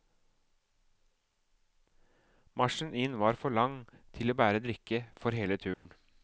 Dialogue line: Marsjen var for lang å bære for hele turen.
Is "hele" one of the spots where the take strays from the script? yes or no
no